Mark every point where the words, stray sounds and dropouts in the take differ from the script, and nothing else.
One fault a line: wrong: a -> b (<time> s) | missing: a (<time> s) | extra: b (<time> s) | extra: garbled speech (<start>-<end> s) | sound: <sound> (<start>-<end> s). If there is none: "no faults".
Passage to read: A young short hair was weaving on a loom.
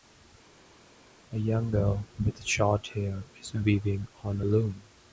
extra: girl with (1.7 s)
wrong: was -> is (3.4 s)